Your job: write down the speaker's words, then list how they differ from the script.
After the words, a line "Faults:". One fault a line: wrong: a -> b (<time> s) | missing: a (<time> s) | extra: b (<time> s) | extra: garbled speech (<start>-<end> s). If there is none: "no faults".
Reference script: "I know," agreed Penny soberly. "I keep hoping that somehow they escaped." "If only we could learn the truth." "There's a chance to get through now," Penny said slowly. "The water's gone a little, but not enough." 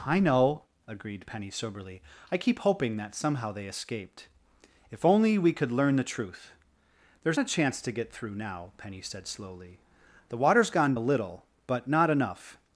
"I know," agreed Penny soberly. "I keep hoping that somehow they escaped." "If only we could learn the truth." "There's a chance to get through now," Penny said slowly. "The water's gone a little, but not enough."
Faults:
no faults